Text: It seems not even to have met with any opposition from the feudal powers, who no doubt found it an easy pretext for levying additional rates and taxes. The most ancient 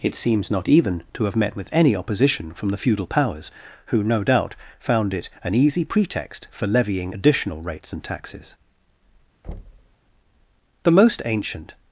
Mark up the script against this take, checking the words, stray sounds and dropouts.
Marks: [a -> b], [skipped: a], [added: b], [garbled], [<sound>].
It seems not even to have met with any opposition from the feudal powers, who no doubt found it an easy pretext for levying additional rates and taxes. [thud] The most ancient